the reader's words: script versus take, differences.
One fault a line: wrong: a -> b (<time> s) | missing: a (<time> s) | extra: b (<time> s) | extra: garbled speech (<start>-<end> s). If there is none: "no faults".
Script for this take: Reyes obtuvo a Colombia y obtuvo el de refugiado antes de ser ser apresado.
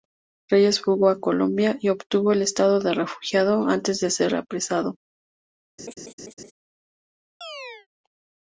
wrong: obtuvo -> fugó (0.8 s)
extra: estado (2.4 s)
missing: ser (4.3 s)